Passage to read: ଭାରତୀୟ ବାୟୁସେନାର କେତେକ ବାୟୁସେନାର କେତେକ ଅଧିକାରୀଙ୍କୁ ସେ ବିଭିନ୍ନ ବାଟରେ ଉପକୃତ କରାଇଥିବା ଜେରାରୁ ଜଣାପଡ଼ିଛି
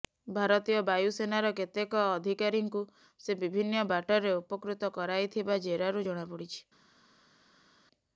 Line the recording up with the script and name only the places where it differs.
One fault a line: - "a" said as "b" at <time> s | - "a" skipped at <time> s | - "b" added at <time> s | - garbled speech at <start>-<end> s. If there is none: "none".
- "ବାୟୁସେନାର କେତେକ" skipped at 2.0 s